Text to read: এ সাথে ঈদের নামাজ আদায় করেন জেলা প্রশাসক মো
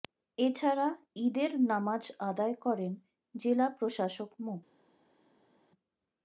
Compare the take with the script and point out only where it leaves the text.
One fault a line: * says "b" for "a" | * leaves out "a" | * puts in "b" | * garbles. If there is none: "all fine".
* says "ছাড়া" for "সাথে"